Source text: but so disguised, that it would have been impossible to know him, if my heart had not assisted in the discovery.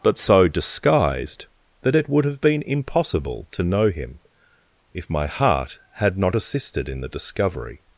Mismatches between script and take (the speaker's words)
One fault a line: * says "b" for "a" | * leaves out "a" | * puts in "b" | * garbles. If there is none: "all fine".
all fine